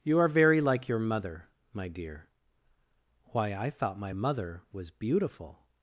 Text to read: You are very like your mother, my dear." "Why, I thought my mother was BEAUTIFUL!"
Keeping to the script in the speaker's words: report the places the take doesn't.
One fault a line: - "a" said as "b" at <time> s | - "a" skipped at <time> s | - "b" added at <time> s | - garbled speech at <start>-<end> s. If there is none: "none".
none